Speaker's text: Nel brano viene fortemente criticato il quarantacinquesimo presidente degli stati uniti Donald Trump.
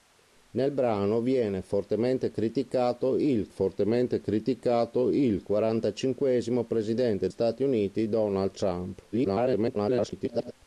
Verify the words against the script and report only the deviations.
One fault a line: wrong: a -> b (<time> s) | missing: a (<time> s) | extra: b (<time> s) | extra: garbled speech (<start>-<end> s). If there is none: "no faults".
extra: fortemente criticato il (3.5 s)
missing: degli (7.3 s)
extra: garbled speech (9.1-10.5 s)